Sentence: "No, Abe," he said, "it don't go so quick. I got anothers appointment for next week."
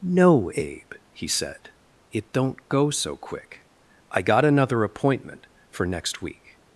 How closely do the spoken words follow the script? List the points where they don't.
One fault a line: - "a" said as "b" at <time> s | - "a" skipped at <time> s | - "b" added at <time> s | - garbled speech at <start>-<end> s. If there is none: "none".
- "anothers" said as "another" at 4.4 s